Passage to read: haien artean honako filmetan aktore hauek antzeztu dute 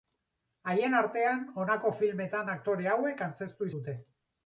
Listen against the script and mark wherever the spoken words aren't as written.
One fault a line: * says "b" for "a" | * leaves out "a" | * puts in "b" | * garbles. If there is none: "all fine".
all fine